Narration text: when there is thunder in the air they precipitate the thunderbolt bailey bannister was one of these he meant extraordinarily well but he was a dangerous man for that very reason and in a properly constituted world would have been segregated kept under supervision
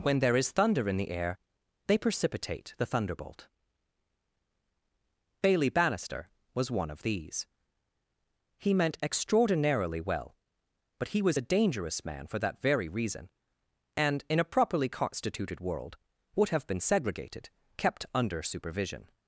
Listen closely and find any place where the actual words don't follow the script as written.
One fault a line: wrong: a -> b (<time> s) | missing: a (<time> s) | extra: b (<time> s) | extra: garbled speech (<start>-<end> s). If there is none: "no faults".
no faults